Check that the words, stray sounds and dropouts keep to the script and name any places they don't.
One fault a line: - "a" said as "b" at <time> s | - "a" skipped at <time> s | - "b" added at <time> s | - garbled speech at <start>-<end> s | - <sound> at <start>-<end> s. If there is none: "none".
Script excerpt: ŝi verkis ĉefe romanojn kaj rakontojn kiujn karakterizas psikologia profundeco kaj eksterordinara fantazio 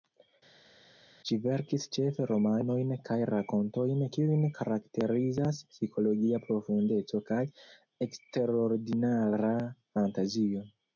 none